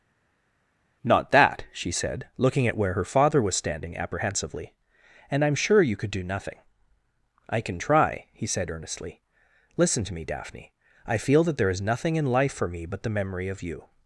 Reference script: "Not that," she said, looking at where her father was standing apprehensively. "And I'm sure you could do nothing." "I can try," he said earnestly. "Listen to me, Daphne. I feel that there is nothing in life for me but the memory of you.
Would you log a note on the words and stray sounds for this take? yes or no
no